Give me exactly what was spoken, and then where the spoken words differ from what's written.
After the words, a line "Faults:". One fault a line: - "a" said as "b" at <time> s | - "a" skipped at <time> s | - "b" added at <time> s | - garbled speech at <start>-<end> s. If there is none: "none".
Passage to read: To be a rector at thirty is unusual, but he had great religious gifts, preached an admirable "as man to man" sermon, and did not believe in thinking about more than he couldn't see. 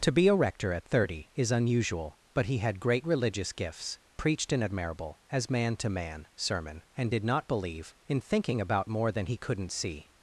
To be a rector at thirty is unusual, but he had great religious gifts, preached an admirable "as man to man" sermon, and did not believe in thinking about more than he couldn't see.
Faults:
none